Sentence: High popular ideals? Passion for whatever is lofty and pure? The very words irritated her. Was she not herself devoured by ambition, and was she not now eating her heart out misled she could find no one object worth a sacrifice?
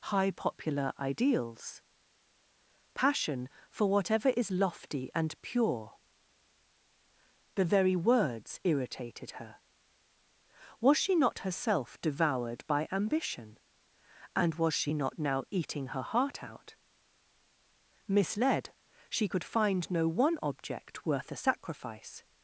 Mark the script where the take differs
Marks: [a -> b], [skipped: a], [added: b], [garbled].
High popular ideals? Passion for whatever is lofty and pure? The very words irritated her. Was she not herself devoured by ambition, and was she not now eating her heart out misled she could find no one object worth a sacrifice?